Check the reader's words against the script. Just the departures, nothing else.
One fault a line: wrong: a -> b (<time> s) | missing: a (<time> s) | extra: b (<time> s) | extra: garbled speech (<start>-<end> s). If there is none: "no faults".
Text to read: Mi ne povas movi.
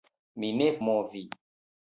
missing: povas (0.7 s)